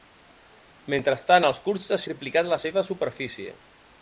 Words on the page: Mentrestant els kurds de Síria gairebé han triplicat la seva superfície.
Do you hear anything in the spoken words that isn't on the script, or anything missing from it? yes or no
yes